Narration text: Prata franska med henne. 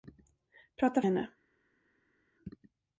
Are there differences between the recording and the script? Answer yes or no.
yes